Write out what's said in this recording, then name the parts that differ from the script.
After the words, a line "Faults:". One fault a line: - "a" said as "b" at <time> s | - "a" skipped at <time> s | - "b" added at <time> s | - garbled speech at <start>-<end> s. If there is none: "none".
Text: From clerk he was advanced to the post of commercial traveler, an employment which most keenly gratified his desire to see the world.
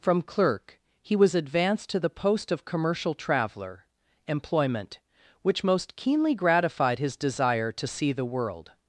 From clerk he was advanced to the post of commercial traveler, employment which most keenly gratified his desire to see the world.
Faults:
- "an" skipped at 3.9 s